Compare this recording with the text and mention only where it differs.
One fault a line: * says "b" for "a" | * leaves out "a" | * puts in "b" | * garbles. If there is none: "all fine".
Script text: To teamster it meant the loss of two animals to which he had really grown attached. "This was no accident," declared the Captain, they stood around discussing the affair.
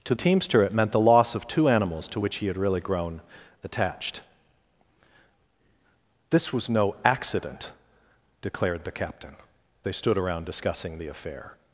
all fine